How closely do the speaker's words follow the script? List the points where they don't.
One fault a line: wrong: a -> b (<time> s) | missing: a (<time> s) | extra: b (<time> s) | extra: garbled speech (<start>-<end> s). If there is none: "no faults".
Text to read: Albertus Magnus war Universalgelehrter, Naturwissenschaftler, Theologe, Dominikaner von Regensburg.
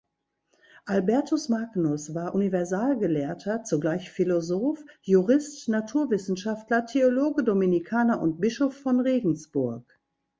extra: zugleich Philosoph Jurist (3.6 s)
extra: und Bischof (8.2 s)